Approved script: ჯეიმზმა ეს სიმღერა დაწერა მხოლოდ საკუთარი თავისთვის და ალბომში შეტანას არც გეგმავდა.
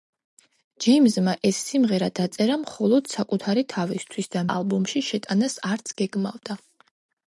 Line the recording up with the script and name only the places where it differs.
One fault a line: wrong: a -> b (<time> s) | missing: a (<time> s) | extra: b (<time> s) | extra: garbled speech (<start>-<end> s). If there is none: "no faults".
no faults